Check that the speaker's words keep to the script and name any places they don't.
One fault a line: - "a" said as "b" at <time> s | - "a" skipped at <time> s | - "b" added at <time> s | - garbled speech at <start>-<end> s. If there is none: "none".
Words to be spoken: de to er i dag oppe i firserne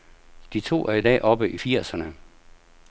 none